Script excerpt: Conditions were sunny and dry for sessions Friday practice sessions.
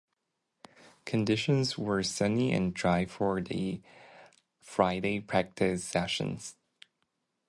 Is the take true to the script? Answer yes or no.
no